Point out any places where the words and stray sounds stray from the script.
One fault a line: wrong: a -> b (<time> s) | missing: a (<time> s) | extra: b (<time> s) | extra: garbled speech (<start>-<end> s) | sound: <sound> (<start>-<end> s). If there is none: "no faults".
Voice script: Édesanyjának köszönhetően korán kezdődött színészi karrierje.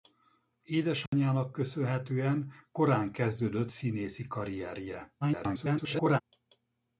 sound: dropout (1.1-1.1 s)
extra: garbled speech (5.2-6.2 s)